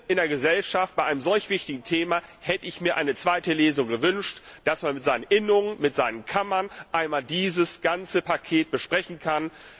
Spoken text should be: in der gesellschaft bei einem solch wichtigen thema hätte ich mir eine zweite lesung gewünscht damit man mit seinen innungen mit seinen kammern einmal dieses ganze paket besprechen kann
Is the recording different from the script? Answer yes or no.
no